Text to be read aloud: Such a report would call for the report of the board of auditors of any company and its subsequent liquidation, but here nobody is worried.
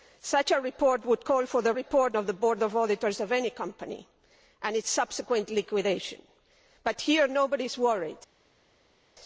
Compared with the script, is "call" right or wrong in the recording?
right